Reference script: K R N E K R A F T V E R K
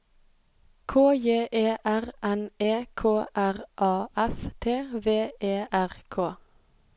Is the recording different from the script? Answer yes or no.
yes